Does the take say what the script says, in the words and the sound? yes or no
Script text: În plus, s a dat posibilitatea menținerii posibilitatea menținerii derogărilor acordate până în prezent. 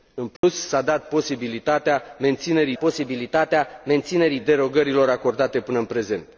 no